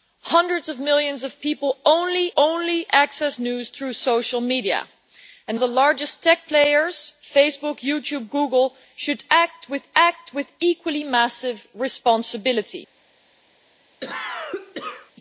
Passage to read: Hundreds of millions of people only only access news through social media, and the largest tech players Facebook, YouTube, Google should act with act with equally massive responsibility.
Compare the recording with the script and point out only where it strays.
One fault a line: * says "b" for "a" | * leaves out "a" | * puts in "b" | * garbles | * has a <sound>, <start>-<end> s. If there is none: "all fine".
* has a cough, 14.0-15.1 s